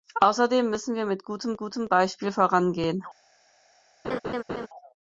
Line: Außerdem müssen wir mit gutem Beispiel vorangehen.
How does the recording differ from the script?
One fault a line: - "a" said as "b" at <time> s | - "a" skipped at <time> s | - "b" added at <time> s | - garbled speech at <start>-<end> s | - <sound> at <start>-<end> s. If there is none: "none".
- "gutem" added at 1.5 s
- laugh at 4.0-4.7 s